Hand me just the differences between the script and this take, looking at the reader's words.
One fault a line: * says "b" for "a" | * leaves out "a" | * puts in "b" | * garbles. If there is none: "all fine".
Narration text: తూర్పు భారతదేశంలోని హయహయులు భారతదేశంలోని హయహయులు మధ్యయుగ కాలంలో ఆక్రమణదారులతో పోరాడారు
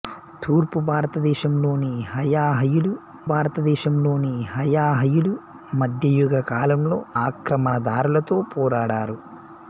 all fine